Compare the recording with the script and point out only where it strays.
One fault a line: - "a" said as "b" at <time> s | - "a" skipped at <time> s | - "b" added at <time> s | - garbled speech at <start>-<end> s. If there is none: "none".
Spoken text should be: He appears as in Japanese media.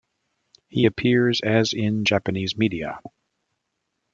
none